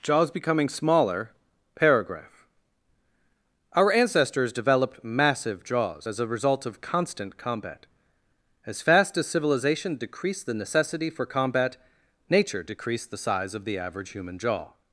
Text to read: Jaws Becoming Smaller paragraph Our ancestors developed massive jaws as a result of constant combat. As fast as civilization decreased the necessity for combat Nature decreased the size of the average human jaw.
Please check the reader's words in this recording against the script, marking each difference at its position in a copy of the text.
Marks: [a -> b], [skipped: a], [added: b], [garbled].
Jaws Becoming Smaller paragraph Our ancestors developed massive jaws as a result of constant combat. As fast as civilization decreased the necessity for combat Nature decreased the size of the average human jaw.